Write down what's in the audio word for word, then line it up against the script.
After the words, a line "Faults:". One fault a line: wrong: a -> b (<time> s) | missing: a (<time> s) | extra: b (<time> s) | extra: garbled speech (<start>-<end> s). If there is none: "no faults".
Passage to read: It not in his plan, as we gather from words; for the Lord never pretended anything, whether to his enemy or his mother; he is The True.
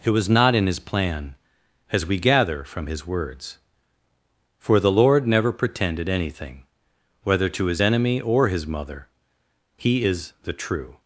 It was not in his plan, as we gather from his words; for the Lord never pretended anything, whether to his enemy or his mother; he is The True.
Faults:
extra: was (0.1 s)
extra: his (2.9 s)